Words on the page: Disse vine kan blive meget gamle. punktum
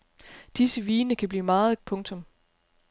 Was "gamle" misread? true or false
true